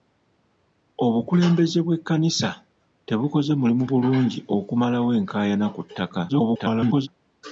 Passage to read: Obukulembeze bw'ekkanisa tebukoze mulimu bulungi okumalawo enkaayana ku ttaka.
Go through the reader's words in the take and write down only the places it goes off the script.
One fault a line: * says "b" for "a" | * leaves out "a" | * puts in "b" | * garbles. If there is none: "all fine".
* garbles